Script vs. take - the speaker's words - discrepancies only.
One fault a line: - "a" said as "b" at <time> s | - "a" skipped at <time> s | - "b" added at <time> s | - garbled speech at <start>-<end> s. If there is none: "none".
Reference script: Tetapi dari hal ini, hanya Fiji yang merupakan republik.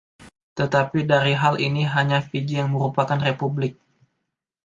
none